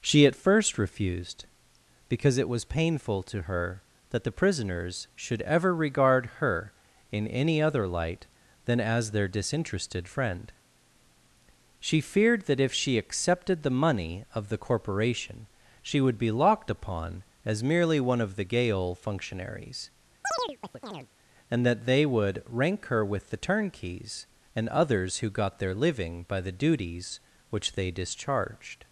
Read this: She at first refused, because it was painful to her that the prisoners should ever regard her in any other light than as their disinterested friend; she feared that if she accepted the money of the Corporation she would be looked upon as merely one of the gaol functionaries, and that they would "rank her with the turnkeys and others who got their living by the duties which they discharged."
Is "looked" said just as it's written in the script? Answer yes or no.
no